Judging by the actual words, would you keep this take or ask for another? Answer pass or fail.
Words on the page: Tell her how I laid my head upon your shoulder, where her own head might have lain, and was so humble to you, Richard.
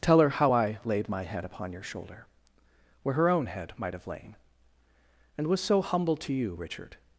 pass